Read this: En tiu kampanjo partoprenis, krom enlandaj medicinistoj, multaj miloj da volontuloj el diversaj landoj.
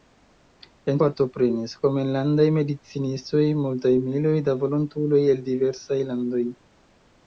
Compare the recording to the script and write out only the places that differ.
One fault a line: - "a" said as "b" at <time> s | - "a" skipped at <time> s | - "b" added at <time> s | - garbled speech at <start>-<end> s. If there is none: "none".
- "tiu kampanjo" skipped at 1.0 s